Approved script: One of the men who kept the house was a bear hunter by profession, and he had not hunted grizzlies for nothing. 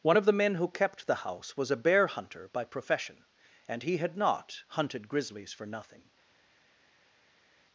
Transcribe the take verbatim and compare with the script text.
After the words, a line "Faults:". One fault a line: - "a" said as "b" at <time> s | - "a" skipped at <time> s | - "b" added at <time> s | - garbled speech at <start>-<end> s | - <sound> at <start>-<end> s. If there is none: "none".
One of the men who kept the house was a bear hunter by profession, and he had not hunted grizzlies for nothing.
Faults:
none